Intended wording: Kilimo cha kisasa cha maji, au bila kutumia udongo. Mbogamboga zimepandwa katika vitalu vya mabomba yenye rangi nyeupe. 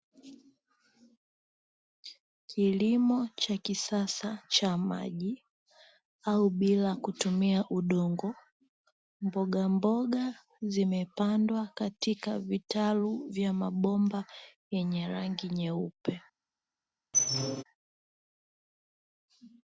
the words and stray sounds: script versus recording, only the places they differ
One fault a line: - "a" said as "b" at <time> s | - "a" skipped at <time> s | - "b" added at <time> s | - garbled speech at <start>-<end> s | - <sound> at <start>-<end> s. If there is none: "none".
- squeak at 17.1-17.6 s